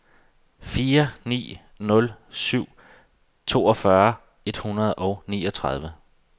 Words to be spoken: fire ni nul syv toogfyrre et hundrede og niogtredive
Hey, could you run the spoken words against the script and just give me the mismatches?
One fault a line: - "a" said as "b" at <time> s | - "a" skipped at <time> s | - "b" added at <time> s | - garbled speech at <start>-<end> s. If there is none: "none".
none